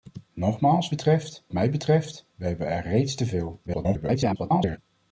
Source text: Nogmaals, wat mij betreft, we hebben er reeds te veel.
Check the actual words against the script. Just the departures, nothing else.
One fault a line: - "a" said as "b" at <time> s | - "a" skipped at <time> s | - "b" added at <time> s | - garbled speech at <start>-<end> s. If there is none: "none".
- "wat" said as "betreft" at 0.9 s
- garbled speech at 3.7-4.8 s